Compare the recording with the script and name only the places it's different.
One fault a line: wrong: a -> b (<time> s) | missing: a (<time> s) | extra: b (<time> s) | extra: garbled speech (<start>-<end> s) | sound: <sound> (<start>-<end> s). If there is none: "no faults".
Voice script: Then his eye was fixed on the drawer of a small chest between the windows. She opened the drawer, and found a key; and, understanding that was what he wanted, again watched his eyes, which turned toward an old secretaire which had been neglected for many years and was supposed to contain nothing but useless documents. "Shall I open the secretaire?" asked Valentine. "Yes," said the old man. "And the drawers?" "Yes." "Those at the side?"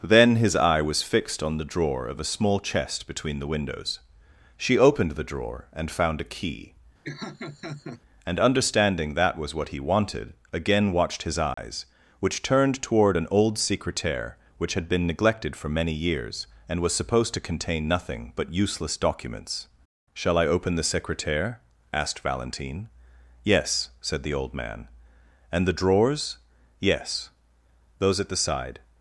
sound: laugh (7.0-8.0 s)
sound: dropout (11.5-11.6 s)